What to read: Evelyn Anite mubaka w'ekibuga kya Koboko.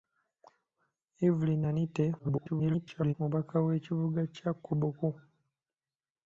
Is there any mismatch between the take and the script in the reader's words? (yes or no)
yes